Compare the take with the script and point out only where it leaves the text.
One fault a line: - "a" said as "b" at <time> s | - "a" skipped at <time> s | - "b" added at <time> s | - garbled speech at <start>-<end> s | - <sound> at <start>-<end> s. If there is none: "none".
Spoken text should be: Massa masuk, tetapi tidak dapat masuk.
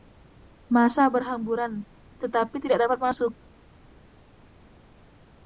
- "masuk" said as "berhamburan" at 1.1 s